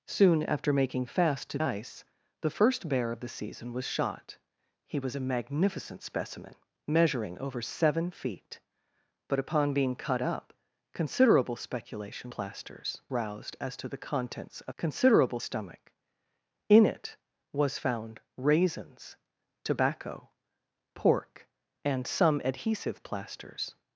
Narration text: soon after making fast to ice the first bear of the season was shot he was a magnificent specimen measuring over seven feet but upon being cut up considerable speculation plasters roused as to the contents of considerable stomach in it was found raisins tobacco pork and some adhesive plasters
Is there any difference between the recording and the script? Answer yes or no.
no